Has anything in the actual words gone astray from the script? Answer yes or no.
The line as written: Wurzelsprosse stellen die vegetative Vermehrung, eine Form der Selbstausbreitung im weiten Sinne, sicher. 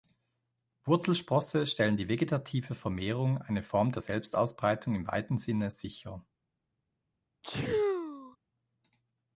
no